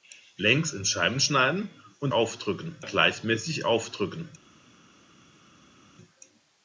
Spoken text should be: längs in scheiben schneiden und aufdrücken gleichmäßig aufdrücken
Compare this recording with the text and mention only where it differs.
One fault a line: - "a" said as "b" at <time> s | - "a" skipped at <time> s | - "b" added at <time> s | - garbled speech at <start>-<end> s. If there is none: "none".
none